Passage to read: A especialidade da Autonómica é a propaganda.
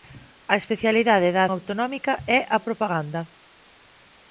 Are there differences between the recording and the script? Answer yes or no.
no